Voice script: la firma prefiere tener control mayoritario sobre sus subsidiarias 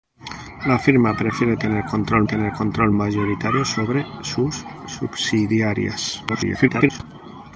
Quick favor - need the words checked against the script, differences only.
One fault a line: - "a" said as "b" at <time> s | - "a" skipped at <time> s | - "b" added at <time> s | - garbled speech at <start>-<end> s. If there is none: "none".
- "tener control" added at 2.3 s
- garbled speech at 6.3-7.0 s